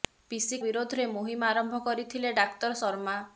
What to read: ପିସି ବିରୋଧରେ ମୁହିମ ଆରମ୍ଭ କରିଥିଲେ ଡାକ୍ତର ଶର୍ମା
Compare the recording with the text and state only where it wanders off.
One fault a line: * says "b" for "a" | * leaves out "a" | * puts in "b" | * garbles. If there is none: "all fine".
all fine